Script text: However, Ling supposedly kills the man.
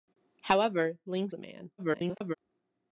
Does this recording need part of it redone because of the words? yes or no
yes